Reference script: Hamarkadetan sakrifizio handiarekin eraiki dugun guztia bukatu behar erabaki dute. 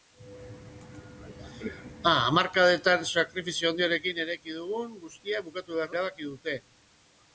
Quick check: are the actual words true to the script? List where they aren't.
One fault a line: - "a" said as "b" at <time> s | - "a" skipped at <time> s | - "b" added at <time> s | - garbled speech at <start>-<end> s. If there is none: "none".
none